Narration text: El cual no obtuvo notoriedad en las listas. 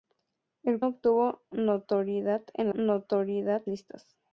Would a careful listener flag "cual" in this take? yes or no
yes